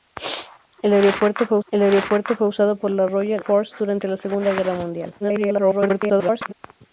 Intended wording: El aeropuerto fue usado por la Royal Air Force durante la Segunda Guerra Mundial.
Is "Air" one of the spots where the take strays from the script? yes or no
yes